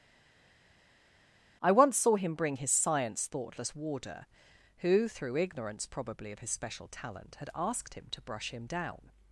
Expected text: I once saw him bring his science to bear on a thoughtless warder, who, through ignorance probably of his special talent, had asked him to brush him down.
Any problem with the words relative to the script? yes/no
yes